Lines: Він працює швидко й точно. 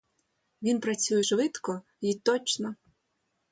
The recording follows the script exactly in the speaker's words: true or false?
true